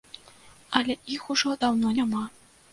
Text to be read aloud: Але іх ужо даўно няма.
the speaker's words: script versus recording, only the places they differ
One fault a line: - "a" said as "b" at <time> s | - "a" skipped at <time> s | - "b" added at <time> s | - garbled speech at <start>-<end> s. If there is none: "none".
none